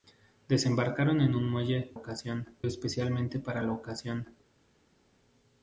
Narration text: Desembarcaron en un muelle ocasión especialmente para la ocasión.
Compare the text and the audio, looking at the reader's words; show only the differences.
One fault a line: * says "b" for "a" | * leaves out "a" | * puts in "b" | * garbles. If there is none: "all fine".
all fine